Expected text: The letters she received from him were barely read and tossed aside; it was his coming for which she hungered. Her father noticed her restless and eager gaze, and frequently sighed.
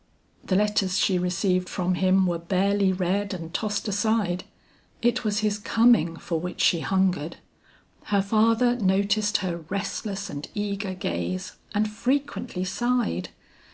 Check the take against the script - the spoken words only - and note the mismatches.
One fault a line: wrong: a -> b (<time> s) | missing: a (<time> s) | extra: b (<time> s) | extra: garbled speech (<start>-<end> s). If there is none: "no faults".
no faults